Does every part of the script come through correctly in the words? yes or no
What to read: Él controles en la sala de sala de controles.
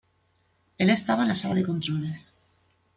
no